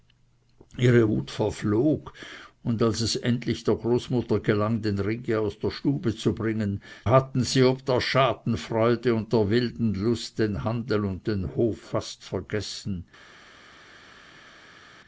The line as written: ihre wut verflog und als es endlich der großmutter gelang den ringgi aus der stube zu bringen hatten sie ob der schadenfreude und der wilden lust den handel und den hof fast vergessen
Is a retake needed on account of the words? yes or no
no